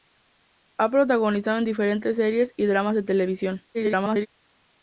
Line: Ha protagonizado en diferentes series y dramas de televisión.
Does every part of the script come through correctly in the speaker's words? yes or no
no